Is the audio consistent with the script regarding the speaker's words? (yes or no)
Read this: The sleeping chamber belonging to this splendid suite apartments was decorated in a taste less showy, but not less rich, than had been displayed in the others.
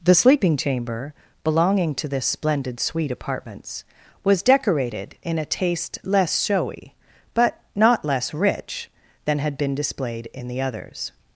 yes